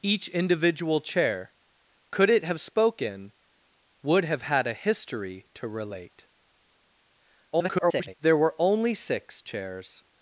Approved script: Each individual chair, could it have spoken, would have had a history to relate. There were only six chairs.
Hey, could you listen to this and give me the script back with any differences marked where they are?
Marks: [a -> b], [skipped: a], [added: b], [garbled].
Each individual chair, could it have spoken, would have had a history to relate. [garbled] There were only six chairs.